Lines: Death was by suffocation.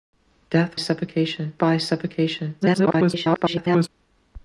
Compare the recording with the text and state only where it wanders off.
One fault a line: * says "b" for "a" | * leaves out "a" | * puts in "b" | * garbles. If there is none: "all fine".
* says "suffocation" for "was"
* garbles